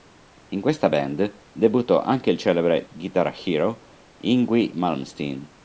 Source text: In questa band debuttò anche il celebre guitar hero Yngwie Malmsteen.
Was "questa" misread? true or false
false